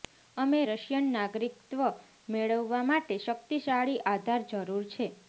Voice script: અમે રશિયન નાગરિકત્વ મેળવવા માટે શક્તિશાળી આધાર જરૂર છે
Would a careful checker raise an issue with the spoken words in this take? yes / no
no